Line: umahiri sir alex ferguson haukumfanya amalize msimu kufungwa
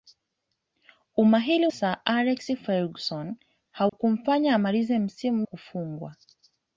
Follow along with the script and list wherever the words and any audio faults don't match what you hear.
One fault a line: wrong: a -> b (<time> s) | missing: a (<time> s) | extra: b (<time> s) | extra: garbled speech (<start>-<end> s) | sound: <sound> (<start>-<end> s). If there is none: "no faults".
sound: dropout (3.9-3.9 s)